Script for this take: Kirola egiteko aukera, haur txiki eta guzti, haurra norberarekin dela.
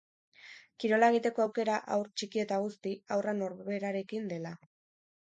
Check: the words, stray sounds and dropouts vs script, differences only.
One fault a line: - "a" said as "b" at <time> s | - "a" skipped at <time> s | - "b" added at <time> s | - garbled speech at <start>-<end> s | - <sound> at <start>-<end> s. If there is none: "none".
none